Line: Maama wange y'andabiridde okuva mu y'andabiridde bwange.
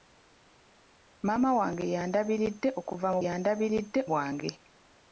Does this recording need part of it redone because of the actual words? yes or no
no